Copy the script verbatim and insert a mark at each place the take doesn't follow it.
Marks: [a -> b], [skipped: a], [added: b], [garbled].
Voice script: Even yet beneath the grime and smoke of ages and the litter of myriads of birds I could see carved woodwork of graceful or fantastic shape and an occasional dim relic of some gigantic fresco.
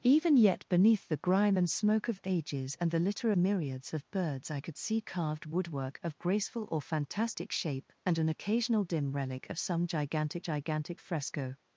Even yet beneath the grime and smoke of ages and the litter [skipped: of] myriads of birds I could see carved woodwork of graceful or fantastic shape and an occasional dim relic of some gigantic [added: gigantic] fresco.